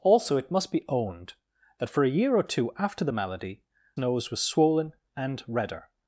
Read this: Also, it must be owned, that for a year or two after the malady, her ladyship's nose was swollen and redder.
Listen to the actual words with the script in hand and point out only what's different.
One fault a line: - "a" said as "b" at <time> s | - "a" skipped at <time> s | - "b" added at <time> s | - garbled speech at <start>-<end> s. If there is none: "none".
- "her ladyship's" skipped at 3.6 s